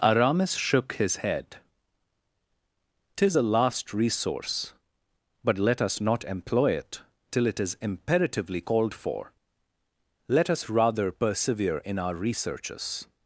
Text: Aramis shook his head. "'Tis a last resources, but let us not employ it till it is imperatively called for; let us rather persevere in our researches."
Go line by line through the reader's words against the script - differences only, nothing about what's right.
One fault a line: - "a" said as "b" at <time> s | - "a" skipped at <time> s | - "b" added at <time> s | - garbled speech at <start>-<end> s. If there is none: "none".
- "resources" said as "resource" at 3.9 s